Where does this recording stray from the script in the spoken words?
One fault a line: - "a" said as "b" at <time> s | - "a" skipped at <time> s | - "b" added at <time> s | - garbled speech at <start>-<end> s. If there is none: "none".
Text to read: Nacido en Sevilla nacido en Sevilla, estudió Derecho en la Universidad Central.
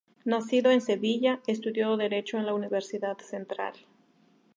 - "nacido en Sevilla" skipped at 1.4 s